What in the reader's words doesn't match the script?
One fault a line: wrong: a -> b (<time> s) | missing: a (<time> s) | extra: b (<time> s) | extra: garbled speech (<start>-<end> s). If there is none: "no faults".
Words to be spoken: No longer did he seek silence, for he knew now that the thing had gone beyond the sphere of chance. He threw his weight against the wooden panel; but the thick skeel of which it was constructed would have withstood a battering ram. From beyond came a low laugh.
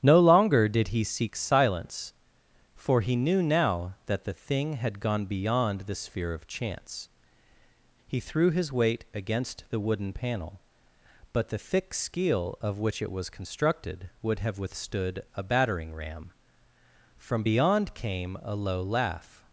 no faults